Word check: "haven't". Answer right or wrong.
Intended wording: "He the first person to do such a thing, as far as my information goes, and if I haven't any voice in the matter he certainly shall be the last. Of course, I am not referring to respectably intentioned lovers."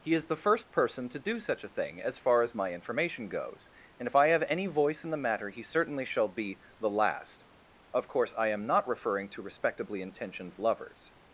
wrong